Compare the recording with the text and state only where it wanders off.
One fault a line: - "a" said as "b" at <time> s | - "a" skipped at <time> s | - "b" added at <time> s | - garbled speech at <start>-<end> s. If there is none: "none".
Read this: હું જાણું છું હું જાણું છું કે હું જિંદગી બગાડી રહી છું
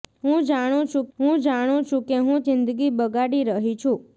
none